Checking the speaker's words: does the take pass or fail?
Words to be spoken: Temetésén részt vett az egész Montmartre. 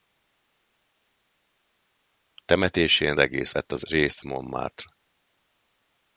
fail